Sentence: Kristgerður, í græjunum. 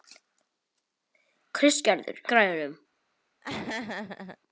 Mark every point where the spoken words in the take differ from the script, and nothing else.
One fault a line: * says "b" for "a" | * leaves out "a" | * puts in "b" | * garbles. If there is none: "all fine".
all fine